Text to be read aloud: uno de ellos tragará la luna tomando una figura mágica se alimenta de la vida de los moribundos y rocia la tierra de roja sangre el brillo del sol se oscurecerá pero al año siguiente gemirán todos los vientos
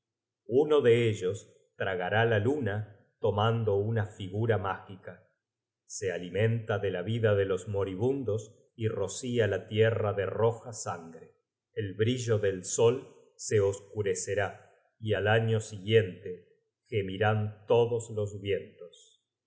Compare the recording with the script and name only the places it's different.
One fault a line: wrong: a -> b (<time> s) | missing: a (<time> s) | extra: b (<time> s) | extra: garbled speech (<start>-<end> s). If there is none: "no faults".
wrong: pero -> y (15.0 s)